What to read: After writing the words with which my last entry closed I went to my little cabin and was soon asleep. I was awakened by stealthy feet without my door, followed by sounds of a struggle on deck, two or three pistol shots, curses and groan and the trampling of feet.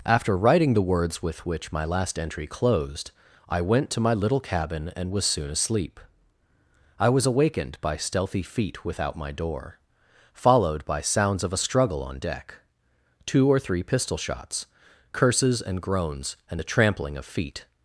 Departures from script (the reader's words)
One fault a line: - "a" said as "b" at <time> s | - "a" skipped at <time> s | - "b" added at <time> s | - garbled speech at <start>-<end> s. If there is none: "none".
- "groan" said as "groans" at 15.8 s